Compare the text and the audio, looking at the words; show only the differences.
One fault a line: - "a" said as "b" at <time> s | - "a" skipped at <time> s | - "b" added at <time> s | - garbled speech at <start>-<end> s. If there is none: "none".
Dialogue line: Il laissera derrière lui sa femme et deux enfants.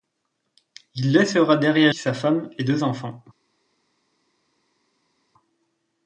- "lui" skipped at 1.9 s